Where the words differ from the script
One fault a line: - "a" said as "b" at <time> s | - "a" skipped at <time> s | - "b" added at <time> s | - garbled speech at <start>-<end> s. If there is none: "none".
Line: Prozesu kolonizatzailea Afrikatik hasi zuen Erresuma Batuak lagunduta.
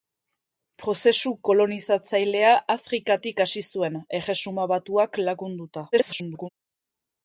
- garbled speech at 5.9-6.5 s